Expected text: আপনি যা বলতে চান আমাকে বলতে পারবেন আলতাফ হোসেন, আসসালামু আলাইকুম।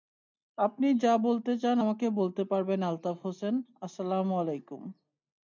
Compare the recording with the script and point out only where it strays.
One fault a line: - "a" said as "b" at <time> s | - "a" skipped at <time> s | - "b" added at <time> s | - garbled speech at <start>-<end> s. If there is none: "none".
none